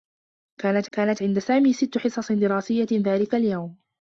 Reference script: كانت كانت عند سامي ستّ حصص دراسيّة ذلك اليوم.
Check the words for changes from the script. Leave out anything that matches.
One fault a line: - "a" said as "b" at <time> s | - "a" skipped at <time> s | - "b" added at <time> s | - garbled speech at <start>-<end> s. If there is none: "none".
none